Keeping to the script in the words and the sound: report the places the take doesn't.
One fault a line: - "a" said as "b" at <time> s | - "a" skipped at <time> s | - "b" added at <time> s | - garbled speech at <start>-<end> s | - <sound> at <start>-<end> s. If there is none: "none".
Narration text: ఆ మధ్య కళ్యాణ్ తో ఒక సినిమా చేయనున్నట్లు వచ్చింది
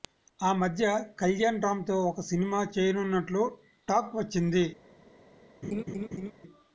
- "రామ్" added at 1.6 s
- "టాక్" added at 3.9 s
- laugh at 5.6-6.3 s